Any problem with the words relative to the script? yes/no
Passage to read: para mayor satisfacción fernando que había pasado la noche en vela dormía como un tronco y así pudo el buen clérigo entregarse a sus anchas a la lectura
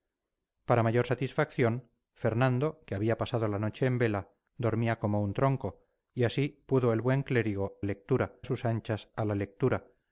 yes